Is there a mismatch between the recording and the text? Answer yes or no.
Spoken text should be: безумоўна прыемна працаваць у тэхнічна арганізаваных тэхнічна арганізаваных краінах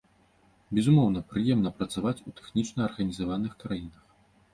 yes